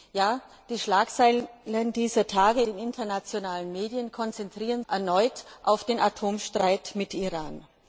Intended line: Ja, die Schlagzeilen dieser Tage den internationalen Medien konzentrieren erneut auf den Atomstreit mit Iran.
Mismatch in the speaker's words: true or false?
false